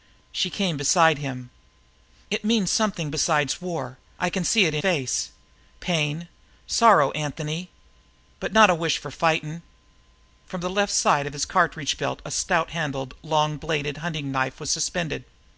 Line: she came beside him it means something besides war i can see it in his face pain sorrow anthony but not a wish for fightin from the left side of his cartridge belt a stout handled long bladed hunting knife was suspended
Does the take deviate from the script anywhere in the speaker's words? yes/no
yes